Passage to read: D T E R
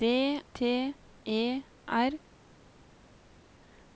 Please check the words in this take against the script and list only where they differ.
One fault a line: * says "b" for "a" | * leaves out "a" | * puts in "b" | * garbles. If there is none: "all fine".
all fine